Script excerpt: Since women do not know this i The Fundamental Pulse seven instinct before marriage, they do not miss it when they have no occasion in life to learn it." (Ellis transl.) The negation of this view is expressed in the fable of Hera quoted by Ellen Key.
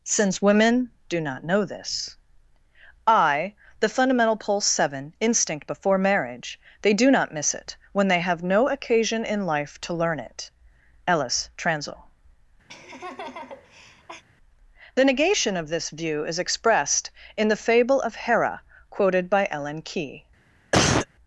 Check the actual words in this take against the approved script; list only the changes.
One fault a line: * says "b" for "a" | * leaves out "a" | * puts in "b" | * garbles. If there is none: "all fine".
all fine